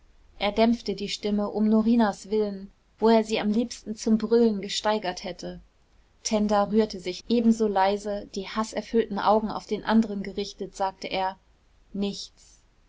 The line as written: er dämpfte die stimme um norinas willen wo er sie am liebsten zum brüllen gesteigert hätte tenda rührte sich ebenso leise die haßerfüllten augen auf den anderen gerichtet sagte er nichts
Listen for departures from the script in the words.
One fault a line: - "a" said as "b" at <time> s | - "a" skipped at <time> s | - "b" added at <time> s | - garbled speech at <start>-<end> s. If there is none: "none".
none